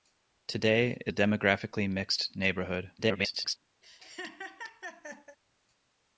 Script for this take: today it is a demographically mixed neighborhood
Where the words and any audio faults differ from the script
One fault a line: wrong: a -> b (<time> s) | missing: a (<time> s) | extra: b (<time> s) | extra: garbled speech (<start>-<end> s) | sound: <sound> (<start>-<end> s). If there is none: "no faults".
missing: is (1.1 s)
extra: garbled speech (3.0-3.6 s)
sound: laugh (3.8-5.4 s)